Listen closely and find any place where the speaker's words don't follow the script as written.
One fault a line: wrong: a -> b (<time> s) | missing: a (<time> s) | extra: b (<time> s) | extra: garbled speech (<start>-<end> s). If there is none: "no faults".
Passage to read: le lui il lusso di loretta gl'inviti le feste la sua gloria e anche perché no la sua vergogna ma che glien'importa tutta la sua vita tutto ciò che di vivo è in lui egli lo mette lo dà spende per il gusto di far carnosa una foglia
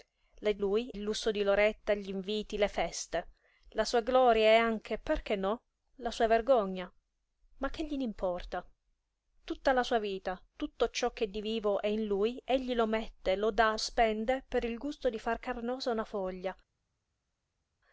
no faults